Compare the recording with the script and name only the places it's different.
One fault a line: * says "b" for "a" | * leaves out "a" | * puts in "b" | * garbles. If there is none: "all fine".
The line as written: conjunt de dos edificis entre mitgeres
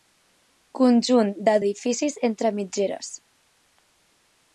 * leaves out "dos"